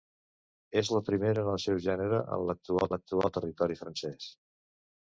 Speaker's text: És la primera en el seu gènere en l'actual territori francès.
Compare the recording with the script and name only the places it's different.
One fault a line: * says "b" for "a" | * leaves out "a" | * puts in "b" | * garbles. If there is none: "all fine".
* puts in "l'actual"